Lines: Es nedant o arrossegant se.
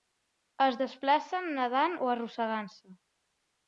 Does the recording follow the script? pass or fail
fail